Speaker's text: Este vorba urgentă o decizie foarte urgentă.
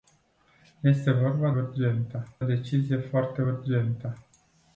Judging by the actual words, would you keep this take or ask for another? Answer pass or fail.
pass